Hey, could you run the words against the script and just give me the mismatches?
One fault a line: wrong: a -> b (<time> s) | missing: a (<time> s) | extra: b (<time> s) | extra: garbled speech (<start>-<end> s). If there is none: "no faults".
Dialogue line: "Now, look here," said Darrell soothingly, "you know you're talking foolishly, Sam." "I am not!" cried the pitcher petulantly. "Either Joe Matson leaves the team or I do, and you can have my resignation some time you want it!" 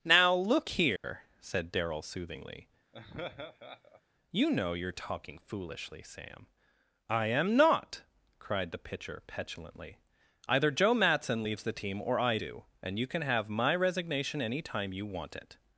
wrong: some -> any (14.4 s)